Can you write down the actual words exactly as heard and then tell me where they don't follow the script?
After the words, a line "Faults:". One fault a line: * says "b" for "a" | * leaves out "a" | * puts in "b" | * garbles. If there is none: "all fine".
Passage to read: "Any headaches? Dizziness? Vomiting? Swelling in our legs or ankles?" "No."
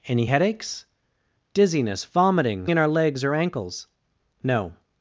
"Any headaches? Dizziness? Vomiting? In our legs or ankles?" "No."
Faults:
* leaves out "Swelling"